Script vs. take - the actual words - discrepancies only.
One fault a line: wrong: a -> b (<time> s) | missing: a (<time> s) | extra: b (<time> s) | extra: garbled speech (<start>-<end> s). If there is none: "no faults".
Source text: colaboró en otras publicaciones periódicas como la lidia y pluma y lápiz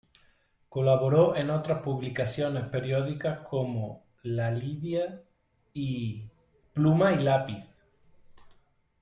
no faults